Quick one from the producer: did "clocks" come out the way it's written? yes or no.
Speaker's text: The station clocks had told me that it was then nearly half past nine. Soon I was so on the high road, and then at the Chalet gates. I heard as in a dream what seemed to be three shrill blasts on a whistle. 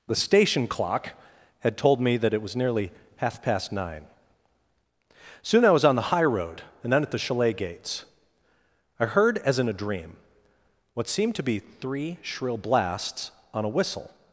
no